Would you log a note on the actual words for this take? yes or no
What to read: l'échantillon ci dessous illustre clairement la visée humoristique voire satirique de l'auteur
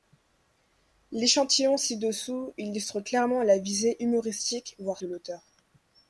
yes